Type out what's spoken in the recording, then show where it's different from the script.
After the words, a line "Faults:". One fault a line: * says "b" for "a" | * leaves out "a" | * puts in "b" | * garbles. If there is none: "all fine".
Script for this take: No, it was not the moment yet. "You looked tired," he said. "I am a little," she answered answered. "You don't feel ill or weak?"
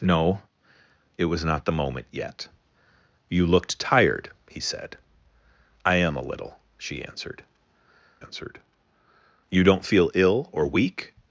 No, it was not the moment yet. "You looked tired," he said. "I am a little," she answered answered. "You don't feel ill or weak?"
Faults:
all fine